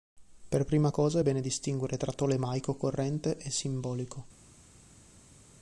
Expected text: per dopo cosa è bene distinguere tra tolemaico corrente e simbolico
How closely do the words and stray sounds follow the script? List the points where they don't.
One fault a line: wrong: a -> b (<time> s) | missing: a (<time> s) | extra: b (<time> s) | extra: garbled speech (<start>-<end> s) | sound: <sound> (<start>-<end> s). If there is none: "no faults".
wrong: dopo -> prima (0.7 s)